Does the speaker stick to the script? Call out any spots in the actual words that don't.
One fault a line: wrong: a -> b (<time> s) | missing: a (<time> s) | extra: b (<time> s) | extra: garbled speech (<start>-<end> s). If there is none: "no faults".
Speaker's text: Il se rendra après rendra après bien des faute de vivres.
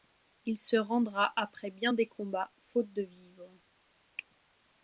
missing: rendra après (1.7 s)
extra: combats (2.1 s)